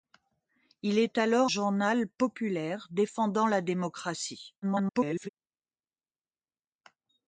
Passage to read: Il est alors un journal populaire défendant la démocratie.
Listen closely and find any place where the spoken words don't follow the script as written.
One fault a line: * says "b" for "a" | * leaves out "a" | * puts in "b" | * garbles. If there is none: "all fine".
* leaves out "un"
* garbles